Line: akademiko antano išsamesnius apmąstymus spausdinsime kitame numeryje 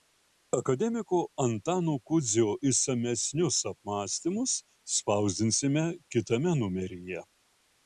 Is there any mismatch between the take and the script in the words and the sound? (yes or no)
yes